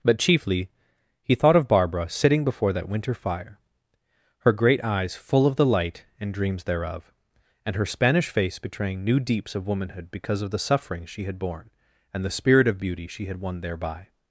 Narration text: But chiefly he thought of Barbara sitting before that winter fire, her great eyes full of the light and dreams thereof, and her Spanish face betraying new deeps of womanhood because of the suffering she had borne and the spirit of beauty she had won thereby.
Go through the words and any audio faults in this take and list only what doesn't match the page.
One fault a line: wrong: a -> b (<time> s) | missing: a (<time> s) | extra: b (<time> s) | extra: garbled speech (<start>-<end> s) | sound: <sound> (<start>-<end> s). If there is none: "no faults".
no faults